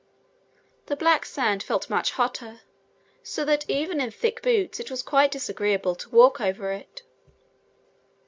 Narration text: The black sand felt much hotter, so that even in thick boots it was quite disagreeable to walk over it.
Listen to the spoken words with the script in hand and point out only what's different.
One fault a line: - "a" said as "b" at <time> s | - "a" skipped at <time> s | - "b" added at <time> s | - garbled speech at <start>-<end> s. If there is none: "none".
none